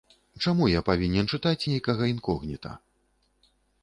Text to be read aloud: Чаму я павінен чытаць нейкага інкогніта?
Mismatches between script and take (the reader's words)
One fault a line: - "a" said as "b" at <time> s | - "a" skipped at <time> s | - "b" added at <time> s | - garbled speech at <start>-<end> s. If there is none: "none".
none